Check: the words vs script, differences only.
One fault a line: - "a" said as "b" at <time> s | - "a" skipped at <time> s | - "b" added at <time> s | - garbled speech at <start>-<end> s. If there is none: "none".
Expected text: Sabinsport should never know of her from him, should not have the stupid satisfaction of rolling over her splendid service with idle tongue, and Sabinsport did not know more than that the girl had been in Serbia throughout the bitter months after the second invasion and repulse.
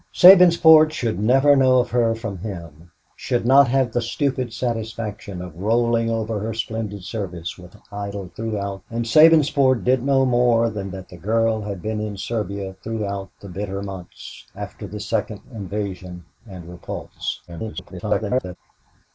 - "tongue" said as "throughout" at 8.3 s
- "not" skipped at 10.0 s
- garbled speech at 17.5-18.6 s